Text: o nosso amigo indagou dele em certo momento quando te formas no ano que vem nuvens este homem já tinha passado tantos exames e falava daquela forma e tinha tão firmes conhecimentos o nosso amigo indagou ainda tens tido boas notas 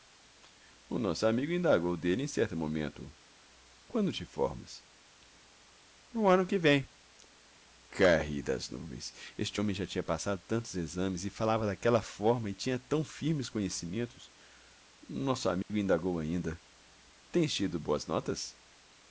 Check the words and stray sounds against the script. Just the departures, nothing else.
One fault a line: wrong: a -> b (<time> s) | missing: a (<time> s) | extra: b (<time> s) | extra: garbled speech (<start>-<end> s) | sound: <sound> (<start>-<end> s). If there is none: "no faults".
extra: caí das (7.9 s)
sound: dropout (15.6-15.7 s)